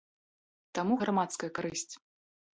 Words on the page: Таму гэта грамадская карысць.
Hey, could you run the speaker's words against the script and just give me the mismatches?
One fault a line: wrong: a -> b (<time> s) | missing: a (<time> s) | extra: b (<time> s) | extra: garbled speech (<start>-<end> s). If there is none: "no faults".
missing: гэта (1.0 s)